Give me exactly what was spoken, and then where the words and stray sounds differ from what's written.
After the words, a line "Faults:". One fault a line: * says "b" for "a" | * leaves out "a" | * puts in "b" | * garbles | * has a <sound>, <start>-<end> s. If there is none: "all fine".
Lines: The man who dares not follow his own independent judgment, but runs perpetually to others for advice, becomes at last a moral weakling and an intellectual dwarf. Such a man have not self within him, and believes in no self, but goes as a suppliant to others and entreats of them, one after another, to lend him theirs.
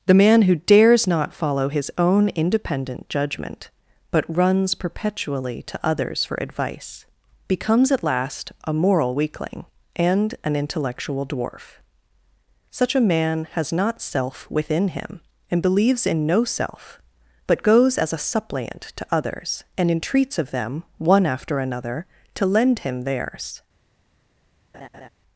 The man who dares not follow his own independent judgment, but runs perpetually to others for advice, becomes at last a moral weakling and an intellectual dwarf. Such a man has not self within him, and believes in no self, but goes as a suppliant to others and entreats of them, one after another, to lend him theirs.
Faults:
* says "has" for "have"
* has a laugh, 24.7-25.1 s